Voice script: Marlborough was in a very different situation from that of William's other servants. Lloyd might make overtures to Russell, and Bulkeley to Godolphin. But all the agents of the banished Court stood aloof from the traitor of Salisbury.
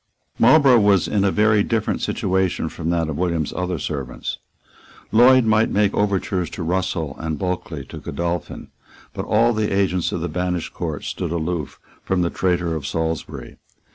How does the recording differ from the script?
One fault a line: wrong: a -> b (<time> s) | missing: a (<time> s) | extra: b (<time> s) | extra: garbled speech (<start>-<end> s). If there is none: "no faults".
no faults